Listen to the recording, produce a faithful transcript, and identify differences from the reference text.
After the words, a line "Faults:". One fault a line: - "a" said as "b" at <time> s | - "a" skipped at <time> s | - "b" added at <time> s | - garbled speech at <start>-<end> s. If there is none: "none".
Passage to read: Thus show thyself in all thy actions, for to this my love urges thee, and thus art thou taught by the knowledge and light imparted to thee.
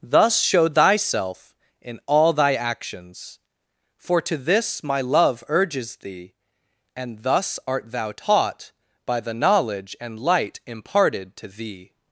Thus show thyself in all thy actions, for to this my love urges thee, and thus art thou taught by the knowledge and light imparted to thee.
Faults:
none